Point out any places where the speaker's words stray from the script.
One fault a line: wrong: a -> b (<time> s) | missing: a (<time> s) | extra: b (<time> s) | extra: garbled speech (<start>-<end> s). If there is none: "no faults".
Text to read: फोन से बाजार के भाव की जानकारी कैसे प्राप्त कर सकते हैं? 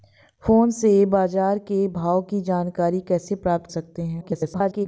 missing: कर (3.7 s)
extra: garbled speech (4.2-4.9 s)